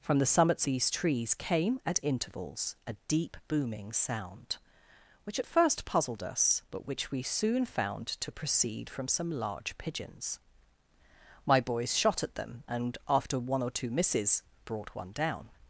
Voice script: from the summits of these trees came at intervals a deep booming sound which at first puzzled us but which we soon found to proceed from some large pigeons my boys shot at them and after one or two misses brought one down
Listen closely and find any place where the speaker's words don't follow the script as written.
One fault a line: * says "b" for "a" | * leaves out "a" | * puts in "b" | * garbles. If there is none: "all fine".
* leaves out "of"